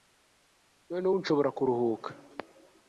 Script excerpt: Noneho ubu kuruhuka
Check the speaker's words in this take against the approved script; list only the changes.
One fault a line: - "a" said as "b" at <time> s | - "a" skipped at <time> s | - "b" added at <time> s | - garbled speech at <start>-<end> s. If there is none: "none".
- "nshobora" added at 1.2 s